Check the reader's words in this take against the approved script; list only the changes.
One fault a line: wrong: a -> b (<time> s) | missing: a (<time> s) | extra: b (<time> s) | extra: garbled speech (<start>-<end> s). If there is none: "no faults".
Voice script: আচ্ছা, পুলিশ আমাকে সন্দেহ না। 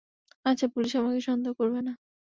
extra: করবে (1.6 s)